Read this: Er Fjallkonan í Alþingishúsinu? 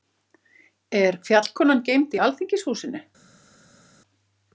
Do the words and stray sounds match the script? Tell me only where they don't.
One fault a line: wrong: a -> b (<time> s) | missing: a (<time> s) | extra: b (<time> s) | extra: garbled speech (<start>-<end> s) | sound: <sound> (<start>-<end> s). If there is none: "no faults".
extra: geymd (1.9 s)